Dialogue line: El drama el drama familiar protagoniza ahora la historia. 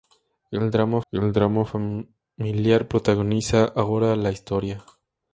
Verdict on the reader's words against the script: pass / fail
pass